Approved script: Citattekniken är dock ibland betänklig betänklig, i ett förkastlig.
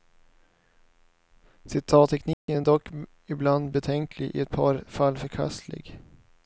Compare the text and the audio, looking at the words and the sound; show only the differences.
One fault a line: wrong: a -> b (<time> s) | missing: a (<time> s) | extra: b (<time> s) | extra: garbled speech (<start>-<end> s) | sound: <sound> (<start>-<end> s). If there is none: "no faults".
sound: dropout (2.3-2.5 s)
missing: betänklig (4.4 s)
extra: par fall (4.5 s)